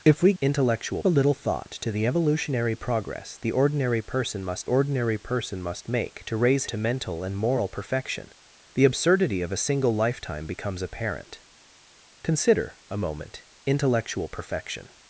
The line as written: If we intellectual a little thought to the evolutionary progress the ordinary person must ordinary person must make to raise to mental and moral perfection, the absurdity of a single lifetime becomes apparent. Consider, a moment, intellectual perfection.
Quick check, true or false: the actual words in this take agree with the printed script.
true